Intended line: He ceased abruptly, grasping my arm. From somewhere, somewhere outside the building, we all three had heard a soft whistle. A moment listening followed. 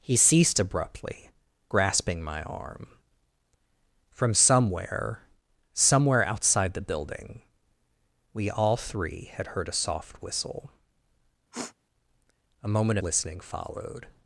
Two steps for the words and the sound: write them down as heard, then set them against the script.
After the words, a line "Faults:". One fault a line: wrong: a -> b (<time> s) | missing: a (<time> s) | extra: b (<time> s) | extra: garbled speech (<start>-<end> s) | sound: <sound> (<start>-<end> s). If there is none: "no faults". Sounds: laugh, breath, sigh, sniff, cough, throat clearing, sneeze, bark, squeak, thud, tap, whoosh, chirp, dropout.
He ceased abruptly, grasping my arm. From somewhere, somewhere outside the building, we all three had heard a soft whistle. A moment listening followed.
Faults:
sound: sniff (11.5-11.8 s)